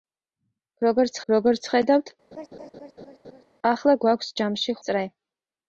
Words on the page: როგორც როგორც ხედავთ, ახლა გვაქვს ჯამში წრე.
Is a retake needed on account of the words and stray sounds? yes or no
yes